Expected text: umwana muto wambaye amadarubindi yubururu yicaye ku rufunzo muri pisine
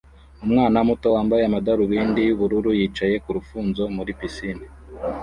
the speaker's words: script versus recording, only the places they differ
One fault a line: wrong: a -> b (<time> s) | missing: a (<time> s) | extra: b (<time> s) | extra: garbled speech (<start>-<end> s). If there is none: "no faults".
no faults